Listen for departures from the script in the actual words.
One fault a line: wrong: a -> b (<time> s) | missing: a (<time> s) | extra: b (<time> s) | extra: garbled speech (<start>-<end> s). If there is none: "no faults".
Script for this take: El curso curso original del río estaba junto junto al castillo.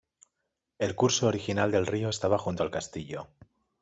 missing: curso (1.3 s)
missing: junto (2.6 s)